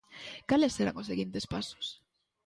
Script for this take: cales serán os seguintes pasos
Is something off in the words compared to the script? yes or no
no